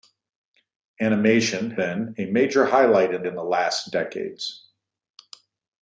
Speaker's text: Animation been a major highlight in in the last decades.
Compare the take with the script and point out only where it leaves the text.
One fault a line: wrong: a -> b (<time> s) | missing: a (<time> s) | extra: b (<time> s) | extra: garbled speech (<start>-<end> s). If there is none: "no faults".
no faults